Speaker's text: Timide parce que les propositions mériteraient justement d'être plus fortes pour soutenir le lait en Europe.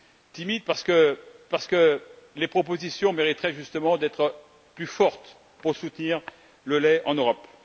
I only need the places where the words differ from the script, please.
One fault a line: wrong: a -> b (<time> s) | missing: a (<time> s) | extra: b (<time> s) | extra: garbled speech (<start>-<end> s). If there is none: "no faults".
extra: parce que (1.5 s)